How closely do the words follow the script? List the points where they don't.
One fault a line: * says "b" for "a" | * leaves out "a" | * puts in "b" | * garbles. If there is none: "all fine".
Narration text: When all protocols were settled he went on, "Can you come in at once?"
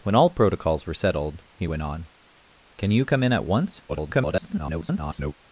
* garbles